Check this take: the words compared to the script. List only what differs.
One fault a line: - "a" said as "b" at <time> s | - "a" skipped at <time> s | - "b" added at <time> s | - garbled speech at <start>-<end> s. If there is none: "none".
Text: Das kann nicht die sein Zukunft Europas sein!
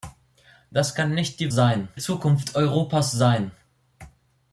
none